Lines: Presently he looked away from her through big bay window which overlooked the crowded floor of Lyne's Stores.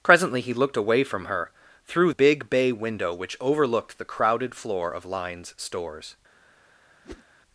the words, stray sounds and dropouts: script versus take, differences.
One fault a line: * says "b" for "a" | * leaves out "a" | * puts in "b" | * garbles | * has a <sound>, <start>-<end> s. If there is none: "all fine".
* has a whoosh, 7.0-7.2 s